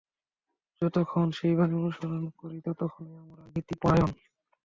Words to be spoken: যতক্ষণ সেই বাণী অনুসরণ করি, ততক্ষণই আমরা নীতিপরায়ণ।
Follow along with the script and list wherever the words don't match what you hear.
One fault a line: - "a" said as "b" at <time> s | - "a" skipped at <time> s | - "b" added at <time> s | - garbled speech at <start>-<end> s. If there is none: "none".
none